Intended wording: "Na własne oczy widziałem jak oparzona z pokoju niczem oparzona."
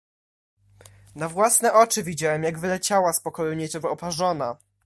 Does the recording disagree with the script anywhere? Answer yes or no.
yes